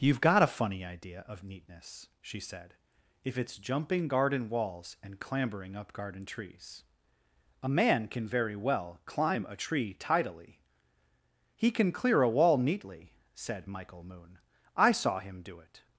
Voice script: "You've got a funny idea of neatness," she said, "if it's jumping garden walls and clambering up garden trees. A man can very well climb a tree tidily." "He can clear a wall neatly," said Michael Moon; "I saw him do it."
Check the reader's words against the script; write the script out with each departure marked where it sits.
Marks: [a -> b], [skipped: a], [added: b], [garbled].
"You've got a funny idea of neatness," she said, "if it's jumping garden walls and clambering up garden trees. A man can very well climb a tree tidily." "He can clear a wall neatly," said Michael Moon; "I saw him do it."